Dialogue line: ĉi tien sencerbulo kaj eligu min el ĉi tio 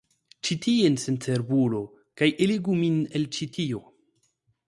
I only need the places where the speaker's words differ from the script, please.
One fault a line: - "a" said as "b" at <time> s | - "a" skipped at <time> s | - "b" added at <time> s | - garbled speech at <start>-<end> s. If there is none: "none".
none